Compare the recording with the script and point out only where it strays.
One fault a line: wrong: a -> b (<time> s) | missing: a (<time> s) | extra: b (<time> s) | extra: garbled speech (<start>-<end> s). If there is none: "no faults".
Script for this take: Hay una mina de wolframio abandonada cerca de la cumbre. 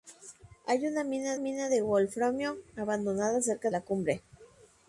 extra: mina (1.4 s)
missing: de (3.7 s)